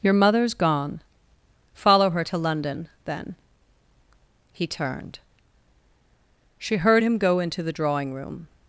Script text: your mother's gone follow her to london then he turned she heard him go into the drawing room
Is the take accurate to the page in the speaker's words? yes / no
yes